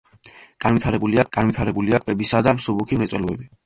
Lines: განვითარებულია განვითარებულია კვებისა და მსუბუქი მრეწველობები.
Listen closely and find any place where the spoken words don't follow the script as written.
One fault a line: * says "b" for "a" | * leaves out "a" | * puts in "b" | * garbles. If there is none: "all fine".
all fine